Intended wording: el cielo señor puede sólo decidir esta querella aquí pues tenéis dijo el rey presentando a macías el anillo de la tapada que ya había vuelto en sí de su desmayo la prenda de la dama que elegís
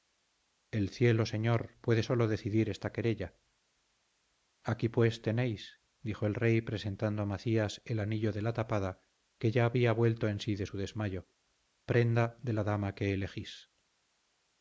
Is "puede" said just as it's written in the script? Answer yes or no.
yes